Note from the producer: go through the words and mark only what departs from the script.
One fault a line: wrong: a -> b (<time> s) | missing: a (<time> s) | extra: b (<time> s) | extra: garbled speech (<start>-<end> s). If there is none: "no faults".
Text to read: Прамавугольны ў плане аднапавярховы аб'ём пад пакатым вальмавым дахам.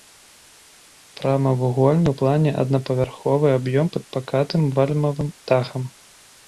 no faults